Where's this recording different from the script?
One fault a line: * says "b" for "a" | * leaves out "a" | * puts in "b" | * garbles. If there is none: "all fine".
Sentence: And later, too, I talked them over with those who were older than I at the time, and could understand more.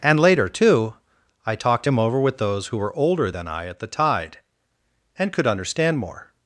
* says "him" for "them"
* says "tide" for "time"